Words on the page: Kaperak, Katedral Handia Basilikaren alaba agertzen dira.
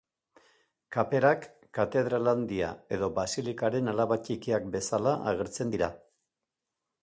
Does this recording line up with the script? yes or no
no